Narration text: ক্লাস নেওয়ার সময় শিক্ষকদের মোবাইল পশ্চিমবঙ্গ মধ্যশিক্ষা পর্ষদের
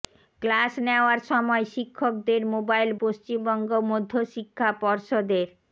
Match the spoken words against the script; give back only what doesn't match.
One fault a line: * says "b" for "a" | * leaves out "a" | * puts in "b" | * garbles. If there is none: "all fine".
all fine